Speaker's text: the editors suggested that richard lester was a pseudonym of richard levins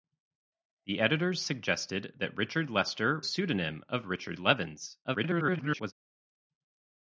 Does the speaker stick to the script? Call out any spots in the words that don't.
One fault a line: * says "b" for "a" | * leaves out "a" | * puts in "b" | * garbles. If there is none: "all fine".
* leaves out "was"
* garbles